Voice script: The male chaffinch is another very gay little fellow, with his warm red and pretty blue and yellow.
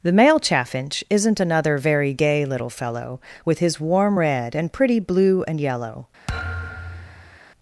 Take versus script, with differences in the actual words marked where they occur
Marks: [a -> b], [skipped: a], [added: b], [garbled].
The male chaffinch [is -> isn't] another very gay little fellow, with his warm red and pretty blue and yellow.